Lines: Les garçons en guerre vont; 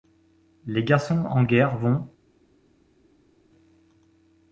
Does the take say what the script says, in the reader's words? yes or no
yes